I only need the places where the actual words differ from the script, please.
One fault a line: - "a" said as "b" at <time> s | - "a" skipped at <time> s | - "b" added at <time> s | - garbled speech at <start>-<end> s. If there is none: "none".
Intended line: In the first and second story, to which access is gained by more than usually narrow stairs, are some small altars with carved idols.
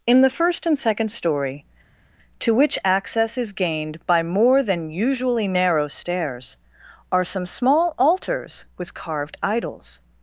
none